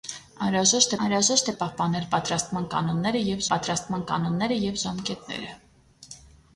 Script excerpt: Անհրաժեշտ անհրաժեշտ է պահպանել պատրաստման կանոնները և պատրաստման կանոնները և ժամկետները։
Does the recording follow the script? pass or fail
pass